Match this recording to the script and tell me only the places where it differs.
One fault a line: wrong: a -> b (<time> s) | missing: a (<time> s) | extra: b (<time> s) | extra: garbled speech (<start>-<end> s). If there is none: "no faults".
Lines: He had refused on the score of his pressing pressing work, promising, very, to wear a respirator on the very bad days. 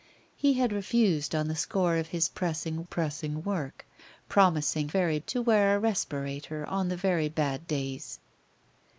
no faults